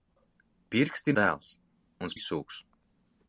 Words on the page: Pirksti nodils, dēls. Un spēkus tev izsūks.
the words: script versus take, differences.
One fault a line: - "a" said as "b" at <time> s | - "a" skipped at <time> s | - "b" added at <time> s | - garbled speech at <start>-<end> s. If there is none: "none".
- "nodils" skipped at 1.1 s
- "spēkus tev" skipped at 2.1 s